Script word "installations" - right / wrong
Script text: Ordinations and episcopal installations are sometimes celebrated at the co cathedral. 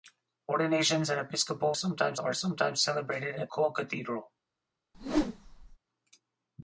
wrong